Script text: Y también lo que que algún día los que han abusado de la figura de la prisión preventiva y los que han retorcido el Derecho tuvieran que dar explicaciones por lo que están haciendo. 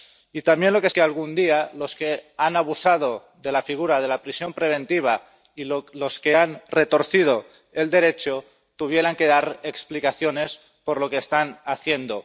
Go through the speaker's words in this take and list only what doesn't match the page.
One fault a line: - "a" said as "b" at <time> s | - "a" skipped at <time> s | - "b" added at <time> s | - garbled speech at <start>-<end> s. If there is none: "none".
none